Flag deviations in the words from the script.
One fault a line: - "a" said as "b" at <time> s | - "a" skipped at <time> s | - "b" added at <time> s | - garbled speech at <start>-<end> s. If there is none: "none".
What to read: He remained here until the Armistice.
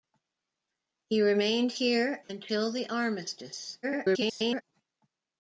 - garbled speech at 3.8-4.6 s